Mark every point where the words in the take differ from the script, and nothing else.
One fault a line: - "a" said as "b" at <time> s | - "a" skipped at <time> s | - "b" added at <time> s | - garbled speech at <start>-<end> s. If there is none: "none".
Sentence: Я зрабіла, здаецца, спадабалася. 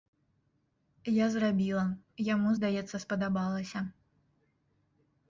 - "яму" added at 2.3 s